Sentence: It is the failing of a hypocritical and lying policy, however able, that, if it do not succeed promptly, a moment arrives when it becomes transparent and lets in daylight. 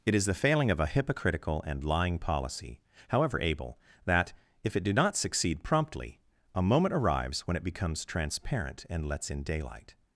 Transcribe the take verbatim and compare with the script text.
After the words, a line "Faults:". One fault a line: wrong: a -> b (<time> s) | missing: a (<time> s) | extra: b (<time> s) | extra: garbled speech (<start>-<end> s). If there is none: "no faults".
It is the failing of a hypocritical and lying policy, however able, that, if it do not succeed promptly, a moment arrives when it becomes transparent and lets in daylight.
Faults:
no faults